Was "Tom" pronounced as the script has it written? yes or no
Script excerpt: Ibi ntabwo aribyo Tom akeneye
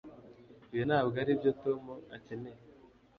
yes